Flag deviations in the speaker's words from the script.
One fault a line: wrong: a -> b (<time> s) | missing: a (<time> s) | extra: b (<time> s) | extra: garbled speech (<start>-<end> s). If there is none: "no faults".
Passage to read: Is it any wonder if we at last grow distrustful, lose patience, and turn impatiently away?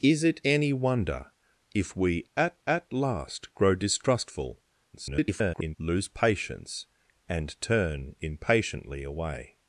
extra: at (2.7 s)
extra: garbled speech (4.9-5.8 s)